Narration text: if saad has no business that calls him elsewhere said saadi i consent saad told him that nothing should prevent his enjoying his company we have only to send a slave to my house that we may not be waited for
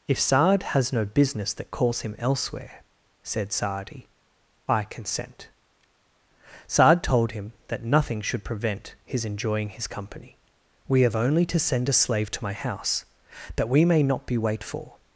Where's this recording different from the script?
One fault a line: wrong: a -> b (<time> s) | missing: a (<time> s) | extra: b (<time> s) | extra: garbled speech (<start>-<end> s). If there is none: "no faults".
wrong: waited -> wait (14.4 s)